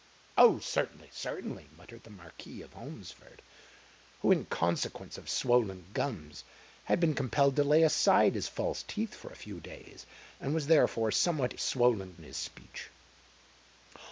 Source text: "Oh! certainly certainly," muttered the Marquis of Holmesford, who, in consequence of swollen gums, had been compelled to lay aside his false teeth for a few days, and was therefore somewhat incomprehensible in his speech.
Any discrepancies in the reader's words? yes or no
yes